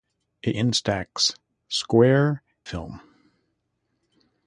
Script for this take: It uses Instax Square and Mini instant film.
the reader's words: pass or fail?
fail